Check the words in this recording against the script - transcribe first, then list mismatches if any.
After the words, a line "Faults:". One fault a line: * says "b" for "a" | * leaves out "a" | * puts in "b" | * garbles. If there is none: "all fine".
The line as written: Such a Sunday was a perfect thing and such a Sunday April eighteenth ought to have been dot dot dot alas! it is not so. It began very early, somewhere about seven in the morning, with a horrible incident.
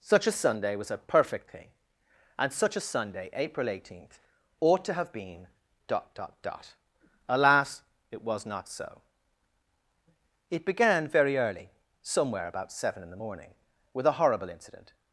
Such a Sunday was a perfect thing and such a Sunday April eighteenth ought to have been dot dot dot alas! it was not so. It began very early, somewhere about seven in the morning, with a horrible incident.
Faults:
* says "was" for "is"